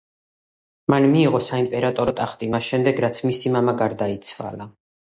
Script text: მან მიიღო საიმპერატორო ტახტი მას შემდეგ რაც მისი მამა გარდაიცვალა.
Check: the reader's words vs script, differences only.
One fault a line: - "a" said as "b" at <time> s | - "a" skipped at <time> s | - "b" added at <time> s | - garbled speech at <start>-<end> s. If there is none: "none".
none